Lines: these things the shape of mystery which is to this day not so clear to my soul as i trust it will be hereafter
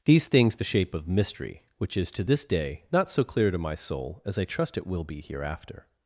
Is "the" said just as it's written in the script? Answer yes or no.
yes